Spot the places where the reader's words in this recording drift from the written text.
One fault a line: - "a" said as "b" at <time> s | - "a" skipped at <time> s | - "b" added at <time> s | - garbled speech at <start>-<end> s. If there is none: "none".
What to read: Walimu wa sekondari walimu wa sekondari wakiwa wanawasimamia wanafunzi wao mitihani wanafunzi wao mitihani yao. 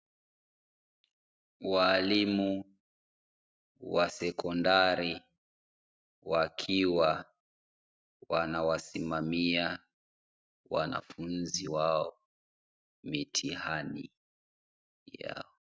- "walimu wa sekondari" skipped at 5.2 s
- "wanafunzi wao mitihani" skipped at 14.1 s